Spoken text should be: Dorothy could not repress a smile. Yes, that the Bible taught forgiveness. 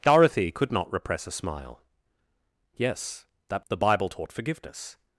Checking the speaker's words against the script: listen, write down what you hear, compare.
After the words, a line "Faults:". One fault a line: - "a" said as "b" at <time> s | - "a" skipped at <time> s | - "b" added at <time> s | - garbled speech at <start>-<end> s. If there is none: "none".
Dorothy could not repress a smile. Yes, that the Bible taught forgiveness.
Faults:
none